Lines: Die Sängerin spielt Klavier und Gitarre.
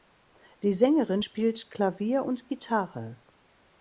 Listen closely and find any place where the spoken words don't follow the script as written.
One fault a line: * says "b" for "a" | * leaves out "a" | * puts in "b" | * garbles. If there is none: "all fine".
all fine